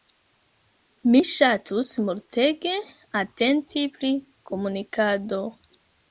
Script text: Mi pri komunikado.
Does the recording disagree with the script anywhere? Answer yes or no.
yes